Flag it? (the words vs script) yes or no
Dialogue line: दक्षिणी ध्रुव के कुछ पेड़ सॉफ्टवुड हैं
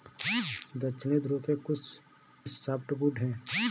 yes